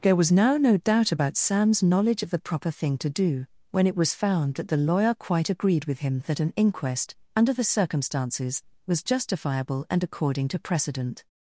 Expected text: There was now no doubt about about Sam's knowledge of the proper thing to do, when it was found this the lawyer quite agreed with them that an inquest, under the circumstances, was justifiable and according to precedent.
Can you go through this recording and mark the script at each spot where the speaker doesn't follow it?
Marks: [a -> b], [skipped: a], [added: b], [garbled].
There was now no doubt about [skipped: about] Sam's knowledge of the proper thing to do, when it was found [this -> that] the lawyer quite agreed with [them -> him] that an inquest, under the circumstances, was justifiable and according to precedent.